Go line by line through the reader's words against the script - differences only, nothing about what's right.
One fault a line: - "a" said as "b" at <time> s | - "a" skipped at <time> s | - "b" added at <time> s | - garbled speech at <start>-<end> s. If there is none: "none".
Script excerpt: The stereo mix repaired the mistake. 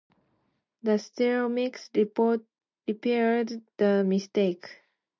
none